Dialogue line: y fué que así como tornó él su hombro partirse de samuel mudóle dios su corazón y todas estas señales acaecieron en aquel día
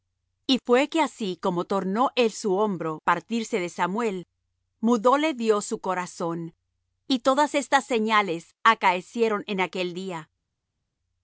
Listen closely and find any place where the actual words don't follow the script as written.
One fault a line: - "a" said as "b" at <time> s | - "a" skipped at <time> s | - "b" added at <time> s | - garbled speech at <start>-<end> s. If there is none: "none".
none